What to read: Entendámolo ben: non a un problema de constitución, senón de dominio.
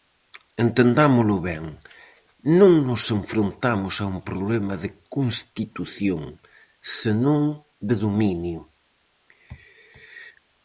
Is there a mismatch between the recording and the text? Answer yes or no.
yes